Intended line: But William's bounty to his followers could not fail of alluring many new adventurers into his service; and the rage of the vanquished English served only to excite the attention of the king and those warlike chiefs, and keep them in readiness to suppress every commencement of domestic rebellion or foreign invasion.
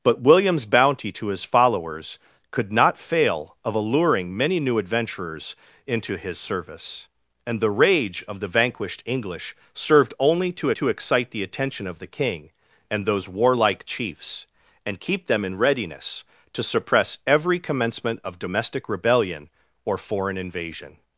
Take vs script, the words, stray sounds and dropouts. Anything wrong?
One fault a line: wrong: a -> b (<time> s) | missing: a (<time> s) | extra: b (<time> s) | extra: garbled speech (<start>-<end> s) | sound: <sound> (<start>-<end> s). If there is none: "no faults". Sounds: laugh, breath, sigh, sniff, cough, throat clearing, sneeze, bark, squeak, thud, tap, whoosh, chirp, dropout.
extra: to (10.7 s)